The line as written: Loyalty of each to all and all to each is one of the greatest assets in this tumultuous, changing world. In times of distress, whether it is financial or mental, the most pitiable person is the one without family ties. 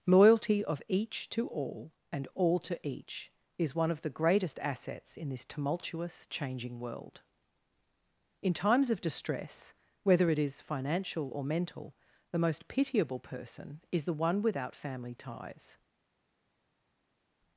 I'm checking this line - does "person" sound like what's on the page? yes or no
yes